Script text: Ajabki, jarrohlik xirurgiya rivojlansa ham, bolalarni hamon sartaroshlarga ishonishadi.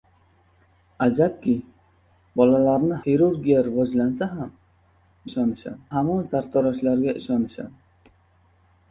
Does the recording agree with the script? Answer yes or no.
no